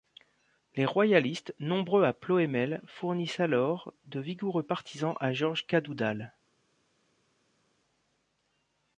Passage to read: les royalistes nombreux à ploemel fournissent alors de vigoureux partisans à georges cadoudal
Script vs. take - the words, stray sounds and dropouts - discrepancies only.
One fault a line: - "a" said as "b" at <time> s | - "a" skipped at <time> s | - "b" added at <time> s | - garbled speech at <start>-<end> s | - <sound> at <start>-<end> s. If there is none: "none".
none